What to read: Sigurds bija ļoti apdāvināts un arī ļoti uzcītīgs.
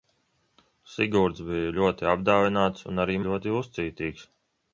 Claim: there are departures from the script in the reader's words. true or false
false